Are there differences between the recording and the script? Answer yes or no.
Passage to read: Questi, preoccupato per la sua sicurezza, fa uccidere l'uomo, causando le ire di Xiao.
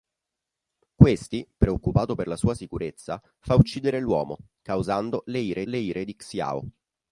yes